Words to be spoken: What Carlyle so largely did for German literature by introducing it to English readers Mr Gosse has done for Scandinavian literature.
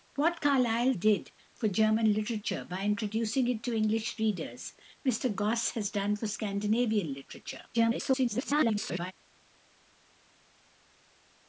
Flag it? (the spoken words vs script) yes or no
yes